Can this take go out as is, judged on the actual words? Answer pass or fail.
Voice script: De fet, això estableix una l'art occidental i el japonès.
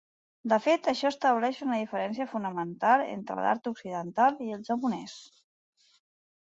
fail